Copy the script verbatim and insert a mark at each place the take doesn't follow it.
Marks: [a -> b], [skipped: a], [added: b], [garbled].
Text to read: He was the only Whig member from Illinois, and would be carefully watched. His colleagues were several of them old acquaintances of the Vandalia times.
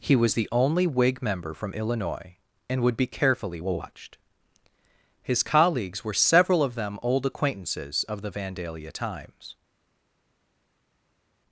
He was the only Whig member from Illinois, and would be carefully watched. His colleagues were several of them old acquaintances of the Vandalia times.